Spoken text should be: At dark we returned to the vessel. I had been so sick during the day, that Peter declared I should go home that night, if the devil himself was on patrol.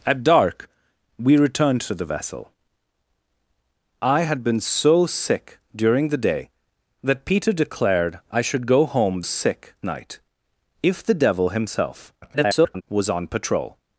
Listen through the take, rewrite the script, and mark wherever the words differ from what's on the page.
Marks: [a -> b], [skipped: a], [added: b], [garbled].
At dark we returned to the vessel. I had been so sick during the day, that Peter declared I should go home [that -> sick] night, if the devil himself [garbled] was on patrol.